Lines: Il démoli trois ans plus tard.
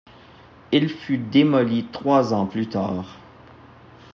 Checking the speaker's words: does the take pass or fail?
fail